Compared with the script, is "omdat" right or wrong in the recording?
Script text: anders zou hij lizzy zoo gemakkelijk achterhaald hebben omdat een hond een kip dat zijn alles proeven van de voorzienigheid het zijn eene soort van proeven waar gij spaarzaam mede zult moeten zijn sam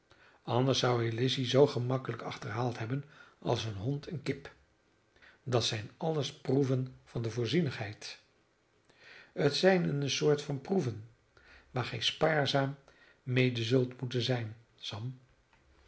wrong